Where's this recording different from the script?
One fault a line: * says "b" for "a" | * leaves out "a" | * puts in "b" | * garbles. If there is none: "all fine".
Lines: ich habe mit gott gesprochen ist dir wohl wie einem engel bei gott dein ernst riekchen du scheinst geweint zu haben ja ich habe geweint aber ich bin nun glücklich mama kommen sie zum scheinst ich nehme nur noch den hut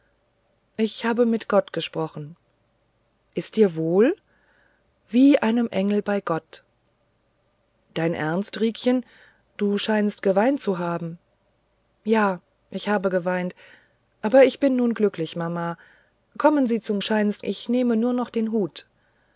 all fine